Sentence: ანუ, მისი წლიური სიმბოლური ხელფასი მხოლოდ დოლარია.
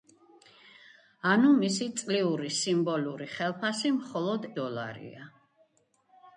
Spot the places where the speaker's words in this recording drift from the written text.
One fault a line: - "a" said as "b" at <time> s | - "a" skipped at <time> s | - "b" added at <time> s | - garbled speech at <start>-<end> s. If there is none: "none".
none